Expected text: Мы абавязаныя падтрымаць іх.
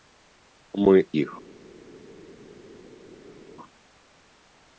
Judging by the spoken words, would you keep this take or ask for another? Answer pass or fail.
fail